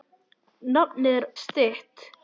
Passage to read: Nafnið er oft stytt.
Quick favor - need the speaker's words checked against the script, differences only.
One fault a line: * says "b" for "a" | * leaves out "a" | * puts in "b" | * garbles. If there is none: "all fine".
* leaves out "oft"